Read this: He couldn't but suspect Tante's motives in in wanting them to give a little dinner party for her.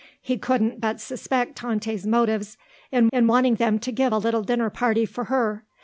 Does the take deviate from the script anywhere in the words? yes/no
no